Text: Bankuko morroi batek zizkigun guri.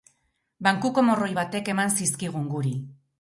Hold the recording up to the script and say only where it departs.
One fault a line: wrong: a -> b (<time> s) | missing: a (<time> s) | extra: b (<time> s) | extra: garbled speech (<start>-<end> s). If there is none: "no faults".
extra: eman (1.7 s)